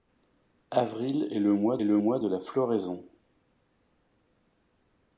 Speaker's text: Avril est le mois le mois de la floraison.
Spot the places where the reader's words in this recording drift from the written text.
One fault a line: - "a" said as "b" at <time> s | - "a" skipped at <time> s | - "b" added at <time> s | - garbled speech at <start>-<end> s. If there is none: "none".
none